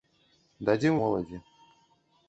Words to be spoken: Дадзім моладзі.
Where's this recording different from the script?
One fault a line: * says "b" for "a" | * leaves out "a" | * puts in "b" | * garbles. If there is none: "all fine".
all fine